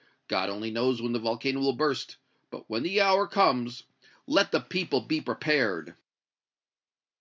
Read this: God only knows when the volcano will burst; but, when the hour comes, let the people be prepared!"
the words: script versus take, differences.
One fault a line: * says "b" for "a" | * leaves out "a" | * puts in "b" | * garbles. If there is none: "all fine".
all fine